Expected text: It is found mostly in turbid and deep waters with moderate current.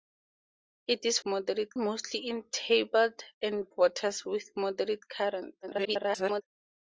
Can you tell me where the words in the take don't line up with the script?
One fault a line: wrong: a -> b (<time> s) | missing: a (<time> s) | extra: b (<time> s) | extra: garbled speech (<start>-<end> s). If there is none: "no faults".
wrong: found -> moderate (1.3 s)
missing: deep (3.7 s)
extra: garbled speech (5.6-6.4 s)